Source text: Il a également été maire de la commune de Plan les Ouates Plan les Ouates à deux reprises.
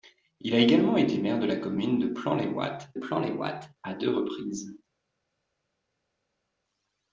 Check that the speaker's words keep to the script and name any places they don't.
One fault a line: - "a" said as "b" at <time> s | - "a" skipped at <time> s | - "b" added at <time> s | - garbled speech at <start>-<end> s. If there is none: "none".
none